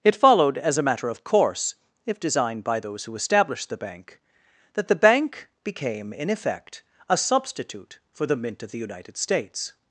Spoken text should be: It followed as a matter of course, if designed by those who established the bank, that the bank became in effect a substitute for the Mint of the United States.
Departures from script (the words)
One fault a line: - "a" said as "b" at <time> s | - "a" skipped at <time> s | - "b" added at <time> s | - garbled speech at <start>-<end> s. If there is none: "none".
none